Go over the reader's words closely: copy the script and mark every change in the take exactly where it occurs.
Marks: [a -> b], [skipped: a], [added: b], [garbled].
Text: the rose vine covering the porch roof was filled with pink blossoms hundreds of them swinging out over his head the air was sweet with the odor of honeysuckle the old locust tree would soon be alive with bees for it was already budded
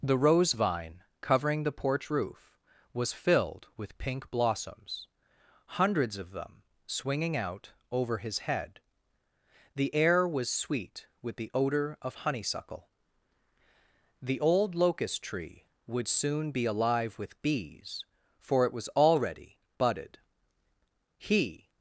the rose vine covering the porch roof was filled with pink blossoms hundreds of them swinging out over his head the air was sweet with the odor of honeysuckle the old locust tree would soon be alive with bees for it was already budded [added: he]